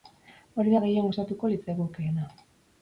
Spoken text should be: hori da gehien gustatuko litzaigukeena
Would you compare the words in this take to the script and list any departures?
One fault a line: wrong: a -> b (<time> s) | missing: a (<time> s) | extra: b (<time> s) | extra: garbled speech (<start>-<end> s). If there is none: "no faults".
no faults